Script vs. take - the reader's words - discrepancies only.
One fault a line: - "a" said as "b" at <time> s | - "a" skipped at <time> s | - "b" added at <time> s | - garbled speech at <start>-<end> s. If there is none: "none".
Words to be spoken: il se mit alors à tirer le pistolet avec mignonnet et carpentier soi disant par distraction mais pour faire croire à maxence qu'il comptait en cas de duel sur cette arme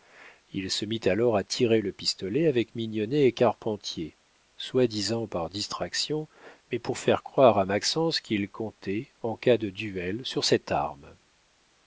none